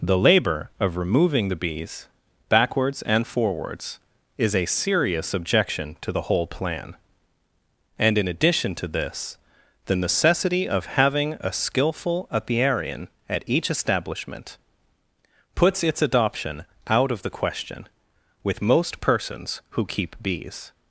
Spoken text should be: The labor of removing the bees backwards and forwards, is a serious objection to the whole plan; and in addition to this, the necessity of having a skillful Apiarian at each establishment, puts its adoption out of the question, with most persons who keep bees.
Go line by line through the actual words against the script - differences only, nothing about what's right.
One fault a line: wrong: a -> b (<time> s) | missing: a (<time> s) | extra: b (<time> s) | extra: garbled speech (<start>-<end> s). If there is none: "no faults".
no faults